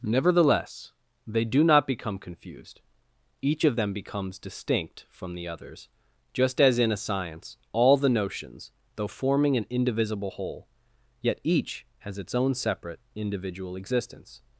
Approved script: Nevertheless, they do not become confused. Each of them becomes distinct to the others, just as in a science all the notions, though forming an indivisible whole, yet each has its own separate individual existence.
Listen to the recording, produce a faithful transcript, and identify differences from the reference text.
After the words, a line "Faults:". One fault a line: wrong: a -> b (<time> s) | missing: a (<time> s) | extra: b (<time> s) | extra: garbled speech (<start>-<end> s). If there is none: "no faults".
Nevertheless, they do not become confused. Each of them becomes distinct from the others, just as in a science all the notions, though forming an indivisible whole, yet each has its own separate individual existence.
Faults:
wrong: to -> from (5.1 s)